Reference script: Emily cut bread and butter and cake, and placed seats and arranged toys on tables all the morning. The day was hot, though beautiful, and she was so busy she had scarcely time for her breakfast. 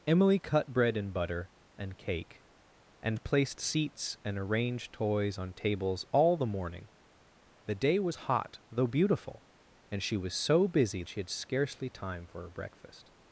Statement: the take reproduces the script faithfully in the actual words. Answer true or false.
true